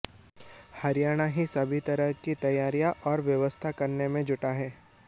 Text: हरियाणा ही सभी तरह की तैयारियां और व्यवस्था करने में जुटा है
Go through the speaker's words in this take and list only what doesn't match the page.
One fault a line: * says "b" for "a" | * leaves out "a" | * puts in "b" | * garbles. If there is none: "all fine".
all fine